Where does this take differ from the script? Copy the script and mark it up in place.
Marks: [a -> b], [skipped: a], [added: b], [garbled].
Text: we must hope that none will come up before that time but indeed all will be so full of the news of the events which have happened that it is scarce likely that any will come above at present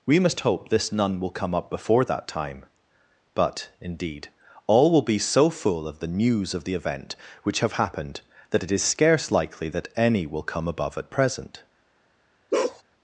we must hope [that -> this] none will come up before that time but indeed all will be so full of the news of the [events -> event] which have happened that it is scarce likely that any will come above at present